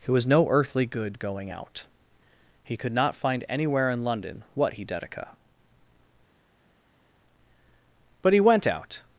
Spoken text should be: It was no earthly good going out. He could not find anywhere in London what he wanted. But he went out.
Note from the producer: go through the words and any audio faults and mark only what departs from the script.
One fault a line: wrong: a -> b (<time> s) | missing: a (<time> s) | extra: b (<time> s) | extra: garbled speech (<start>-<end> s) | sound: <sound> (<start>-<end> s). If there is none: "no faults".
wrong: wanted -> dedica (4.9 s)